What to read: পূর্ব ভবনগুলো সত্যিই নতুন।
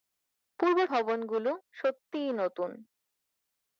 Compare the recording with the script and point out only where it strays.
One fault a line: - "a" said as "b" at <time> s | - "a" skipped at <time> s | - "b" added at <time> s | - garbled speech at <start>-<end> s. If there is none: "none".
none